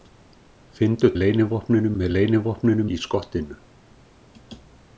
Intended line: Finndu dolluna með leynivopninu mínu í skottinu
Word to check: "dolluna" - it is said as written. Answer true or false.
false